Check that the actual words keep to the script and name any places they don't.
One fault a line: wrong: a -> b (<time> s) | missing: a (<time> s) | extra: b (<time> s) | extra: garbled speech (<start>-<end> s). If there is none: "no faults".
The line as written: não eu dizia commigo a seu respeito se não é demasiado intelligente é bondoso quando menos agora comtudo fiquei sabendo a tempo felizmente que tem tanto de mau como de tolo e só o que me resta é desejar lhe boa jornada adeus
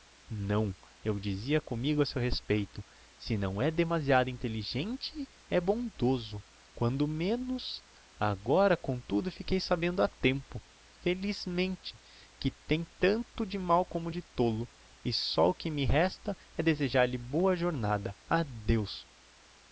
no faults